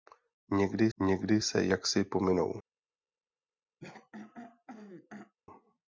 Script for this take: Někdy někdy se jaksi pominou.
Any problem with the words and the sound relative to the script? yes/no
yes